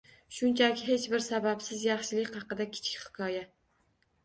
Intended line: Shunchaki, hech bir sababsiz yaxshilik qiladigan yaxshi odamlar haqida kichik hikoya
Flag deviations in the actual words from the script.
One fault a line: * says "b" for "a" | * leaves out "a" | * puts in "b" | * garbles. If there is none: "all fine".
* leaves out "qiladigan yaxshi odamlar"